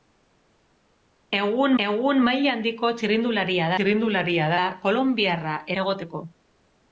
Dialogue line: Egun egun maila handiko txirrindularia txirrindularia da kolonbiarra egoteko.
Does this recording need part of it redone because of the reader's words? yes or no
no